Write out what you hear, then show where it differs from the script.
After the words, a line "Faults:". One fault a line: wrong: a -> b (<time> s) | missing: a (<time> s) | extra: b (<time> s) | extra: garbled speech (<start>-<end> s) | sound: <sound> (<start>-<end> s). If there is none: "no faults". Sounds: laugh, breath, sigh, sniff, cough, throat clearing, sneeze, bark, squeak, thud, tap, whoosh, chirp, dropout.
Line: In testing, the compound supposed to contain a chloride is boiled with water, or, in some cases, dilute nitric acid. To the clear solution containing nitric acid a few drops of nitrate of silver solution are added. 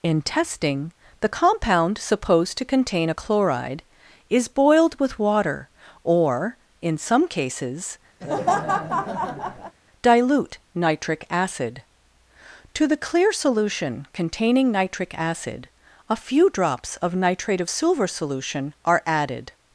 In testing, the compound supposed to contain a chloride is boiled with water, or, in some cases, dilute nitric acid. To the clear solution containing nitric acid a few drops of nitrate of silver solution are added.
Faults:
sound: laugh (8.2-9.8 s)